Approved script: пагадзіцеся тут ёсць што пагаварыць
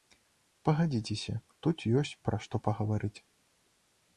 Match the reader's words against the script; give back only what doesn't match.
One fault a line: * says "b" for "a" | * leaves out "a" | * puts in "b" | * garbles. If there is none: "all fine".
* puts in "пра"